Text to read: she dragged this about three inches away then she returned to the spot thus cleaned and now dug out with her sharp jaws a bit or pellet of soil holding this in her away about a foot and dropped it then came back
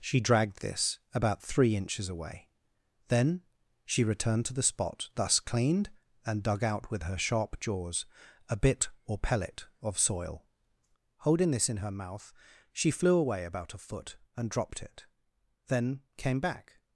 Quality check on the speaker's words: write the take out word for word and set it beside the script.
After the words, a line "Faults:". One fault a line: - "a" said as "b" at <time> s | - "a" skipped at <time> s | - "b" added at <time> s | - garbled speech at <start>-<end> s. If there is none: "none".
she dragged this about three inches away then she returned to the spot thus cleaned and dug out with her sharp jaws a bit or pellet of soil holding this in her mouth she flew away about a foot and dropped it then came back
Faults:
- "now" skipped at 6.4 s
- "mouth she flew" added at 11.9 s